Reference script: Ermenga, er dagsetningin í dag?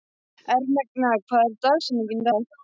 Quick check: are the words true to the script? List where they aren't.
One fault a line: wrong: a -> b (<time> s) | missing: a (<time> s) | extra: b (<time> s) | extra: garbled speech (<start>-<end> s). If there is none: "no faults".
extra: hver (1.3 s)